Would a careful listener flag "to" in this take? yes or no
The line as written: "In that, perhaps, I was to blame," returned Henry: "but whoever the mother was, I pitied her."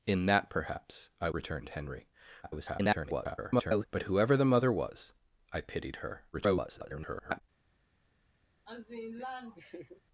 yes